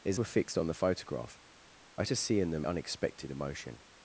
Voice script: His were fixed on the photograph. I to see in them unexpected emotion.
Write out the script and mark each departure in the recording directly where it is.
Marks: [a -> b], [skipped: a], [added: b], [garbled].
His were fixed on the photograph. I to see in them unexpected emotion.